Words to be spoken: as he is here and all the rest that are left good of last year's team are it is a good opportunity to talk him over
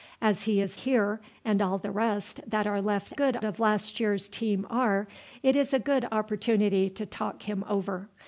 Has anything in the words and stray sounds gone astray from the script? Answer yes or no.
no